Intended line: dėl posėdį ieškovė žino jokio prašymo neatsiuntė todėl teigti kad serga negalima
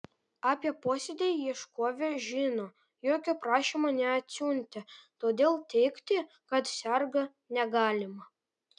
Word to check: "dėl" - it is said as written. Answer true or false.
false